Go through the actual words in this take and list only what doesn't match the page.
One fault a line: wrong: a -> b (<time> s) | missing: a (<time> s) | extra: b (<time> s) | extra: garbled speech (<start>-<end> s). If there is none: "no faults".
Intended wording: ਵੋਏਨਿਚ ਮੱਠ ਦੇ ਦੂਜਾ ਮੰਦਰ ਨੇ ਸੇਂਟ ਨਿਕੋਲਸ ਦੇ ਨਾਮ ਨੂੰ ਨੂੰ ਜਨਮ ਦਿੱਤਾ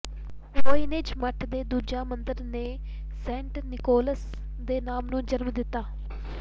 missing: ਨੂੰ (5.2 s)